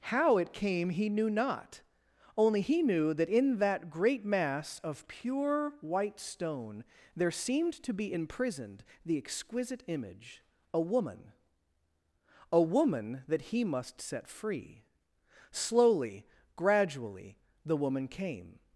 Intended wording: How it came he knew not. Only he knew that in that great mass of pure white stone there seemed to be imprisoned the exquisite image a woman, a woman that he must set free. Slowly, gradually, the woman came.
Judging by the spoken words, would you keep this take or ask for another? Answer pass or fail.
pass